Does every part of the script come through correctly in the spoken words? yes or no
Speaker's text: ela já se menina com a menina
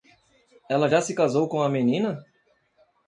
no